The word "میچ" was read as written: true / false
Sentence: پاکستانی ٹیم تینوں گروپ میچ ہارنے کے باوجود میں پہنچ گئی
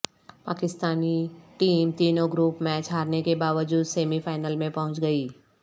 true